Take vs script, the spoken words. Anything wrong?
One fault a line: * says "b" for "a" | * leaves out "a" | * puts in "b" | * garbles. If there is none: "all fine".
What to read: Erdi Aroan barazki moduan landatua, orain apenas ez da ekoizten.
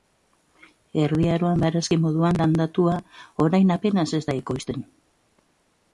all fine